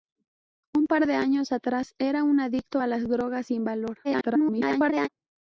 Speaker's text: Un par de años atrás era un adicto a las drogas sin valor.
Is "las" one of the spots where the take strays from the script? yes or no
no